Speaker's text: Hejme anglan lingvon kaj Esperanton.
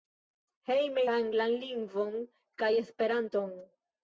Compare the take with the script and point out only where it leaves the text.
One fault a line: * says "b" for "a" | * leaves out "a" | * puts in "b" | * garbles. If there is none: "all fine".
all fine